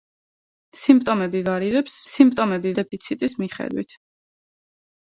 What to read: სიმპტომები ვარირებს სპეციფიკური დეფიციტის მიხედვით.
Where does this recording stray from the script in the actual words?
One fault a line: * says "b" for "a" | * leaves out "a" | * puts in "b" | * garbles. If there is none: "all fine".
* says "სიმპტომები" for "სპეციფიკური"